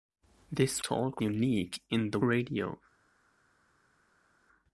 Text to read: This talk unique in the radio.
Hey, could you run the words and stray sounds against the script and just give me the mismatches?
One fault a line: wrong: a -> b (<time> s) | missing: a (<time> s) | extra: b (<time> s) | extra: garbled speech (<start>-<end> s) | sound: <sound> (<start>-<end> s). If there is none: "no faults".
no faults